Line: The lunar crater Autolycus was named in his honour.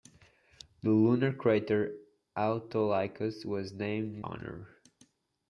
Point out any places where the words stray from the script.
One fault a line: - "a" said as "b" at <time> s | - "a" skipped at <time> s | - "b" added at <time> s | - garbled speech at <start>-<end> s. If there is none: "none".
- "his" skipped at 4.2 s